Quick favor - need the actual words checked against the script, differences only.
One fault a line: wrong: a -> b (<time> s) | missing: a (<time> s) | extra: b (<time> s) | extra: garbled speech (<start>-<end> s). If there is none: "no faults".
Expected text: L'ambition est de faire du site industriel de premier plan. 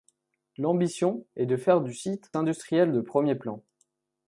no faults